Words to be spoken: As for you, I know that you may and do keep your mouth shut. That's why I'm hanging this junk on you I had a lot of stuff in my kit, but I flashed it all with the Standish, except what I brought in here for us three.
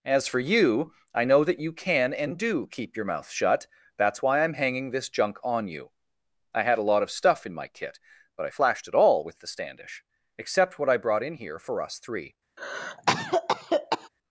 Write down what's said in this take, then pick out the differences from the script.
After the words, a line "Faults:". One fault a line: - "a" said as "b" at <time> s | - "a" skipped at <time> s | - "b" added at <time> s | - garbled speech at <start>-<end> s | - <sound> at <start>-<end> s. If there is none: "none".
As for you, I know that you can and do keep your mouth shut. That's why I'm hanging this junk on you I had a lot of stuff in my kit, but I flashed it all with the Standish, except what I brought in here for us three.
Faults:
- "may" said as "can" at 1.7 s
- cough at 12.6-14.1 s